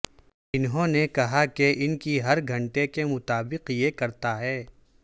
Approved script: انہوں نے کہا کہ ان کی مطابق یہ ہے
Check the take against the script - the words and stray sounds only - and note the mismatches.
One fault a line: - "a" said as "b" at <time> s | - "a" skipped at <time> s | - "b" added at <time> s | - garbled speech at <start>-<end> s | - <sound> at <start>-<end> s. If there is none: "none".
- "ہر گھنٹے کے" added at 2.2 s
- "کرتا" added at 3.9 s